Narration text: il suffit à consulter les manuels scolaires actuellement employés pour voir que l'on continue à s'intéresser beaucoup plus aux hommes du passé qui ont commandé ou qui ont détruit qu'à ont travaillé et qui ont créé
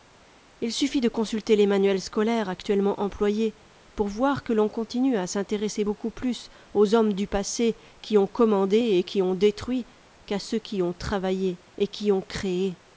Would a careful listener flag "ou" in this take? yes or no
yes